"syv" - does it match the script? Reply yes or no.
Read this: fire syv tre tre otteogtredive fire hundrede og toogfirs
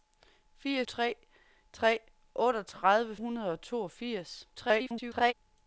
no